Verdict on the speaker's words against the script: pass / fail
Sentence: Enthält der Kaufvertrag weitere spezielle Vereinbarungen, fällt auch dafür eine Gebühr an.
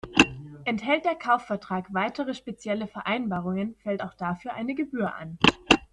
pass